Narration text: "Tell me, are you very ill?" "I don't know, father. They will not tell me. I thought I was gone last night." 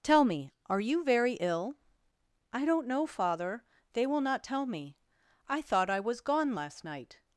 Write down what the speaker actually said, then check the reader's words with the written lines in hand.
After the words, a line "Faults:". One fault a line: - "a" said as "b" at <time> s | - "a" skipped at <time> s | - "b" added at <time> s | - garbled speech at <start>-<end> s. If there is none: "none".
"Tell me, are you very ill?" "I don't know, father. They will not tell me. I thought I was gone last night."
Faults:
none